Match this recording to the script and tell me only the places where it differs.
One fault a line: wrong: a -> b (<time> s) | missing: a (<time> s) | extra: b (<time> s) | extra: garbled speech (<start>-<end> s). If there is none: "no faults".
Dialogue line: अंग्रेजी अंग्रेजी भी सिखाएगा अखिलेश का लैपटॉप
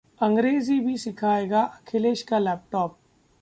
missing: अंग्रेजी (0.8 s)